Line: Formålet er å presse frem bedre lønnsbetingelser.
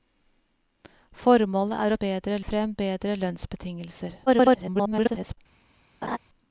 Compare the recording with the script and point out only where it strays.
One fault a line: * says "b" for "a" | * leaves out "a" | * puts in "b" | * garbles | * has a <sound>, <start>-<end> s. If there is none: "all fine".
* says "bedre" for "presse"
* garbles
* has a laugh, 6.0-6.2 s